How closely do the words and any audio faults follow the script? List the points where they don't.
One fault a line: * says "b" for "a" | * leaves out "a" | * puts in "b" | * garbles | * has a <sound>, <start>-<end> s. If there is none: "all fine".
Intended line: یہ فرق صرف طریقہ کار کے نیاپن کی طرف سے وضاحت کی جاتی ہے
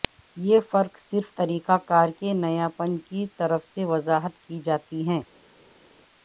all fine